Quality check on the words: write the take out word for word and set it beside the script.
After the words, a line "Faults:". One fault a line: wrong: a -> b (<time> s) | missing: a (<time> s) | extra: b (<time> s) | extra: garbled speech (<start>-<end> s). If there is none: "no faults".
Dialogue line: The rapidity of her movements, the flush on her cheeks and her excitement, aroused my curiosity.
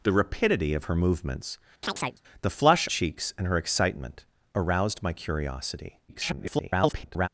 The rapidity of her movements, the flush cheeks and her excitement, aroused my curiosity. [garbled]
Faults:
missing: on her (2.9 s)
extra: garbled speech (6.1-7.3 s)